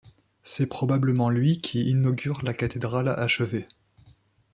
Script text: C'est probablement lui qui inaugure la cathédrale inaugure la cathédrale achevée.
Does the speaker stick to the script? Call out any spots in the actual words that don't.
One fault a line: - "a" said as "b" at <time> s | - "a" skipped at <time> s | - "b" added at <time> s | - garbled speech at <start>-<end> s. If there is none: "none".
- "inaugure la cathédrale" skipped at 3.1 s